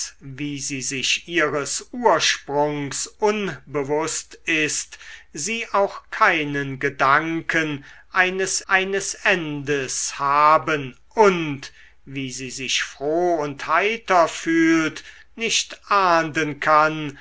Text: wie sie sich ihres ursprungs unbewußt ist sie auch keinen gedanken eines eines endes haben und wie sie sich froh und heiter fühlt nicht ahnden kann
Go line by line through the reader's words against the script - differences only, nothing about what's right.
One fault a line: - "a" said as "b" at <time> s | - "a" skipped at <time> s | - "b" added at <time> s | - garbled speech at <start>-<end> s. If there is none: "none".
none